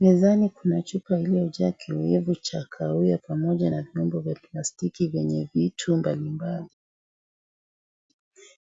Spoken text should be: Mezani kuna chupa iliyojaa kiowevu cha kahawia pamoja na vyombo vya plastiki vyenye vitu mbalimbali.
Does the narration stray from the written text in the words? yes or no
no